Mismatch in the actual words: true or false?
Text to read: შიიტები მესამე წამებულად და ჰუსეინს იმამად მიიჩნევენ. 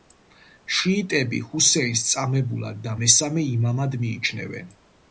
true